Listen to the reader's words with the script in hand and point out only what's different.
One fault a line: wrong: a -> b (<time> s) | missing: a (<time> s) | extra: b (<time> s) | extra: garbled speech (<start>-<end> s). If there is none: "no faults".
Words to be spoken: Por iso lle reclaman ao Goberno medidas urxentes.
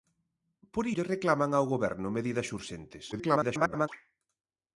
missing: iso (0.8 s)
extra: garbled speech (3.1-3.9 s)